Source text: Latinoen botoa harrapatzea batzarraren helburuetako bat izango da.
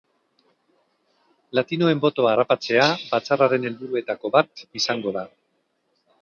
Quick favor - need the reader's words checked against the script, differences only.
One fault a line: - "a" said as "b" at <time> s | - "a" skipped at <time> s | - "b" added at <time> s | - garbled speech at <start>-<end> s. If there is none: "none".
none